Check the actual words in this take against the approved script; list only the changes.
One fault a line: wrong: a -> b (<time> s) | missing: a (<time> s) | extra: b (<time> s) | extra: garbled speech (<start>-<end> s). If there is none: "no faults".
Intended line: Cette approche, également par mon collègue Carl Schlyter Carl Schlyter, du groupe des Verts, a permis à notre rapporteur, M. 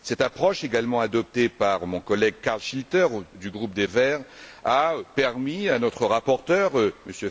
extra: adoptée (1.0 s)
missing: Carl Schlyter (3.0 s)